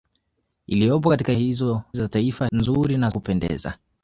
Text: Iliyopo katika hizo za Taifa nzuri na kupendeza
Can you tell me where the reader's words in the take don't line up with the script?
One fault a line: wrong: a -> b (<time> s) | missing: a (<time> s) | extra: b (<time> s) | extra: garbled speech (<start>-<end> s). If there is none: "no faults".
no faults